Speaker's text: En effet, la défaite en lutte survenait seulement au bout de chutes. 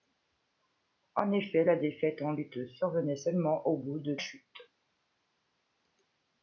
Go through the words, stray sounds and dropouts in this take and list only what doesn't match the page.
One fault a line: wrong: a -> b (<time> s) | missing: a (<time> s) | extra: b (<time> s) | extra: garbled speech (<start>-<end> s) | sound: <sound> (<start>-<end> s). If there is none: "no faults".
no faults